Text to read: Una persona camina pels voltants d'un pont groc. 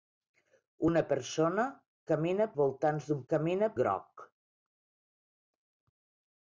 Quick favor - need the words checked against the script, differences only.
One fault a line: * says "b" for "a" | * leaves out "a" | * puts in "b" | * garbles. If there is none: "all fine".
* leaves out "pels"
* says "camina" for "pont"